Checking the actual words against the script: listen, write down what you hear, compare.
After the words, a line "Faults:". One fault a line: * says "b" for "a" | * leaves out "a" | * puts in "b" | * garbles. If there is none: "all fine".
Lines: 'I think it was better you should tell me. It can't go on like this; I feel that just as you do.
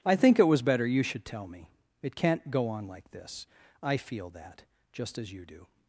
'I think it was better you should tell me. It can't go on like this; I feel that just as you do.
Faults:
all fine